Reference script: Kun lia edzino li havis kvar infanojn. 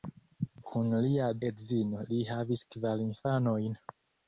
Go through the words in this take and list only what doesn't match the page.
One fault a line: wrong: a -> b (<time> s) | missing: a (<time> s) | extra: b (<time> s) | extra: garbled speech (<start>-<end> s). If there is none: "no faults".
no faults